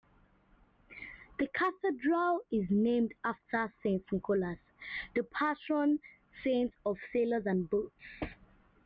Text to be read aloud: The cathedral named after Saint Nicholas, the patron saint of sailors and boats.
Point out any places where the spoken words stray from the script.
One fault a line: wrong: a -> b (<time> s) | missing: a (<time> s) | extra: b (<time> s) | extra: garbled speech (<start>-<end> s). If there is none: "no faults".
extra: is (2.5 s)